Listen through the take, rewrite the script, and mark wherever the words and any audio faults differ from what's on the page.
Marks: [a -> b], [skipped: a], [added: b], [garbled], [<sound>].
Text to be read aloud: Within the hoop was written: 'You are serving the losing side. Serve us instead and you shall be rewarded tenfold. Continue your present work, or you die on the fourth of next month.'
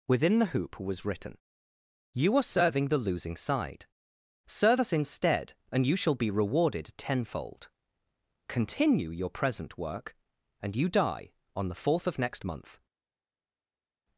Within the hoop was written: 'You are serving the losing side. Serve us instead and you shall be rewarded tenfold. Continue your present work, [or -> and] you die on the fourth of next month.'